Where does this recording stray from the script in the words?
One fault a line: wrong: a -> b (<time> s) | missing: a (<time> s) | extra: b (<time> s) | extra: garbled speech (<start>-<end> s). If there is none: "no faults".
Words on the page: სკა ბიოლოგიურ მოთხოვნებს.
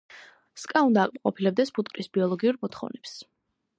extra: უნდა აკმაყოფილებდეს ფუტკრის (0.9 s)